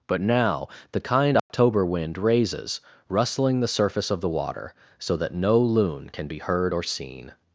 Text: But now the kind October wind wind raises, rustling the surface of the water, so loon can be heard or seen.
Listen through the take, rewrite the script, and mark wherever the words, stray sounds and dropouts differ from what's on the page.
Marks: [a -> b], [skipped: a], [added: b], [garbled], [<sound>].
But now the kind October [dropout] wind [skipped: wind] raises, rustling the surface of the water, so [added: that no] loon can be heard or seen.